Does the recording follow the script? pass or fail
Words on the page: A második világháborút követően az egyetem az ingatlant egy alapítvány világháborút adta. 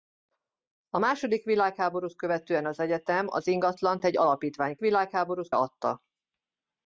pass